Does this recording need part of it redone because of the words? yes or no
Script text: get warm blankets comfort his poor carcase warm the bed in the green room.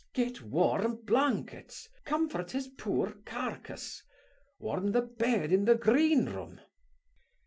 no